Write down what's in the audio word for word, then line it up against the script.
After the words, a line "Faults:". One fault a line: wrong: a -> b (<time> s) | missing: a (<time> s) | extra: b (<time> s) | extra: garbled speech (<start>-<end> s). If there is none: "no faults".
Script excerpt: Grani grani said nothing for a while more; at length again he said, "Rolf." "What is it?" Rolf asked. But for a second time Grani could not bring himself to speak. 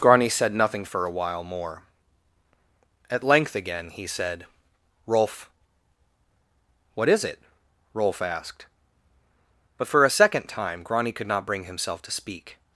Grani said nothing for a while more; at length again he said, "Rolf." "What is it?" Rolf asked. But for a second time Grani could not bring himself to speak.
Faults:
missing: grani (0.3 s)